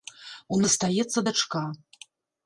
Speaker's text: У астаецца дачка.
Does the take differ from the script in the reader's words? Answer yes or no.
no